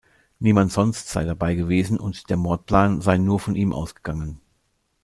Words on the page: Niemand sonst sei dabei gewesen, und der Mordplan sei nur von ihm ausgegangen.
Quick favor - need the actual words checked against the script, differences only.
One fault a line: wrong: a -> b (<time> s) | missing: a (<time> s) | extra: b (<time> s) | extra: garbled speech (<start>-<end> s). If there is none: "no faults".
no faults